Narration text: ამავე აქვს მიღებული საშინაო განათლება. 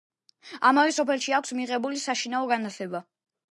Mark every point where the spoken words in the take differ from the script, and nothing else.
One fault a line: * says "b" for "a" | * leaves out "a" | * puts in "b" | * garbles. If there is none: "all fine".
* puts in "სოფელში"